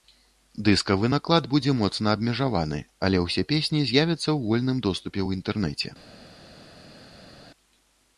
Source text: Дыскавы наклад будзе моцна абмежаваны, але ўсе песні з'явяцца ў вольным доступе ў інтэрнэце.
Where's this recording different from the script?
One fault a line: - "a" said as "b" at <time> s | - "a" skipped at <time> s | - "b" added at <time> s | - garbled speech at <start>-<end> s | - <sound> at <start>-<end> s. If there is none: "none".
none